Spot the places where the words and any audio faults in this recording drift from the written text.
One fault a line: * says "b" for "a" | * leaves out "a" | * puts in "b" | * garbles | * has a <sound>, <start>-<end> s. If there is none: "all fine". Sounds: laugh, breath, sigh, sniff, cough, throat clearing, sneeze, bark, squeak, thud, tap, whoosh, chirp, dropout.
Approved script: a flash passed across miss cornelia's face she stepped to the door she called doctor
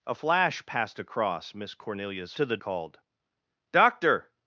* leaves out "face she stepped"
* leaves out "door she"